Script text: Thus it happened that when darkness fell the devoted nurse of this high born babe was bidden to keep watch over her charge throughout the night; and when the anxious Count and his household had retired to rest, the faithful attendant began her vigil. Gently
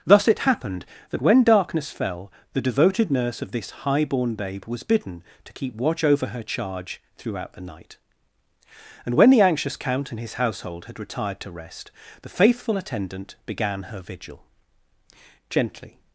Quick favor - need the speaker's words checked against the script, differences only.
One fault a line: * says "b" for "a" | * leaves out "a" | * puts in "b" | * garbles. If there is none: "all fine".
all fine